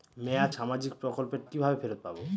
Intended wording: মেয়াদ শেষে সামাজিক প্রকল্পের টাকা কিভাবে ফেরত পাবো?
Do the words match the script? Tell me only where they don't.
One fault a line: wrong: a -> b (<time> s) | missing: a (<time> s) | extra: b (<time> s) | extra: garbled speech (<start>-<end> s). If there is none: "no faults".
missing: শেষে (0.5 s)
missing: টাকা (1.4 s)